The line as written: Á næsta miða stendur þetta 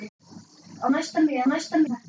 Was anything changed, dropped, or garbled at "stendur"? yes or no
yes